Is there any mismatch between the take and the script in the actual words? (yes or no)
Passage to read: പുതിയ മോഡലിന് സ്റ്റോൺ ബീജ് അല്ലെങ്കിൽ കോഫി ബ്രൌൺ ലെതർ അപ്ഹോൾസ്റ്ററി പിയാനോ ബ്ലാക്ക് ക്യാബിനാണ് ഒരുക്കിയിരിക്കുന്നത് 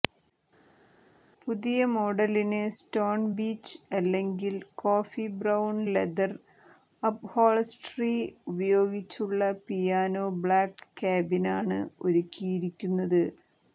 yes